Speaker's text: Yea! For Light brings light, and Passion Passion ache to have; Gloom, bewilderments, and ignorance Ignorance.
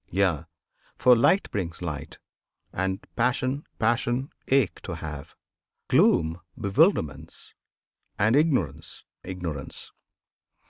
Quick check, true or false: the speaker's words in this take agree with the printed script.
true